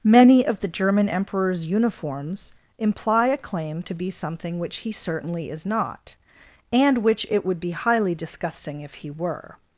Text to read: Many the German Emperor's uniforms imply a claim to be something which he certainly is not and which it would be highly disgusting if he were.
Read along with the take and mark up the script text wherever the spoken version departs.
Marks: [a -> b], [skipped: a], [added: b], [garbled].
Many [added: of] the German Emperor's uniforms imply a claim to be something which he certainly is not and which it would be highly disgusting if he were.